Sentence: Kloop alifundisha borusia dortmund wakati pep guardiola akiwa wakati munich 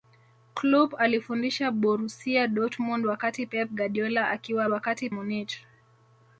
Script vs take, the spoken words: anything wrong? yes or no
no